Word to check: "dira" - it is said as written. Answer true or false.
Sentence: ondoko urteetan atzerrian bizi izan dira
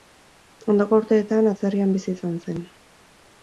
false